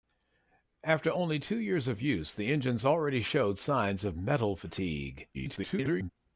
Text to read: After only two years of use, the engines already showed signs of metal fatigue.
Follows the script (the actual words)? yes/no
no